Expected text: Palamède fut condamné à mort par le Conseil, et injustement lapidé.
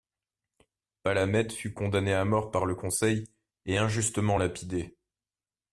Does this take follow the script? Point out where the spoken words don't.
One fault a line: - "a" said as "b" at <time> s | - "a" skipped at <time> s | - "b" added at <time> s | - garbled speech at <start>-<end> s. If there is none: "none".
none